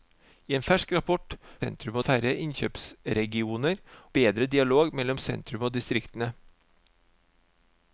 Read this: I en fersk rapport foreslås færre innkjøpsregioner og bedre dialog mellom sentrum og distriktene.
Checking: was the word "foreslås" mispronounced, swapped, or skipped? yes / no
yes